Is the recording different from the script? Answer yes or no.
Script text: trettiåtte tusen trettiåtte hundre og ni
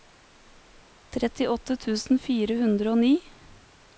yes